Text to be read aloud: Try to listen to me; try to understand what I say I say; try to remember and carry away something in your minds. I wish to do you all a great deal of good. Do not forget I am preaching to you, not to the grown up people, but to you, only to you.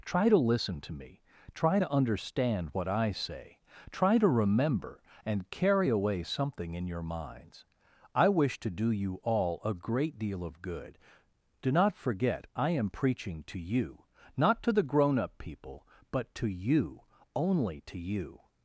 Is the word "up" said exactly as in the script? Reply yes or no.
yes